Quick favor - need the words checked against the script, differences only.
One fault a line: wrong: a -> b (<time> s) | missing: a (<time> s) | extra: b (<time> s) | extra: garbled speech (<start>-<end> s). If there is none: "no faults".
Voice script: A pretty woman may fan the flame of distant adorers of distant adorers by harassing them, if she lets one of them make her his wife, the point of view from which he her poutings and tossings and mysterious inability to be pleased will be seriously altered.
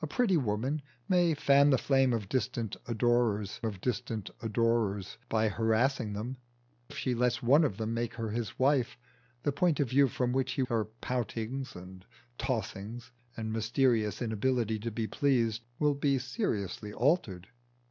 no faults